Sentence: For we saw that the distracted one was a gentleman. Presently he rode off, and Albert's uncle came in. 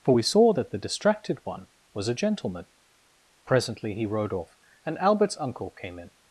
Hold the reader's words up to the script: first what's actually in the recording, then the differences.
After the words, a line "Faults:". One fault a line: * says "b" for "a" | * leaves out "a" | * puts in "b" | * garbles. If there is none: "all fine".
For we saw that the distracted one was a gentleman. Presently he rode off, and Albert's uncle came in.
Faults:
all fine